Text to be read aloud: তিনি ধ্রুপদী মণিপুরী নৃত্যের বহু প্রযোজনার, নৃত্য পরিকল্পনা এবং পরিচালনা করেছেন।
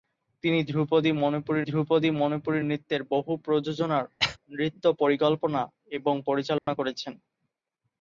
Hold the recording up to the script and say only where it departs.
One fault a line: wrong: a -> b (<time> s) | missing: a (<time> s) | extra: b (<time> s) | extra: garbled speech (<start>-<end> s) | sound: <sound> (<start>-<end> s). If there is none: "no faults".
extra: ধ্রুপদী মণিপুরী (1.6 s)
sound: cough (4.2-4.4 s)
sound: dropout (6.6-6.7 s)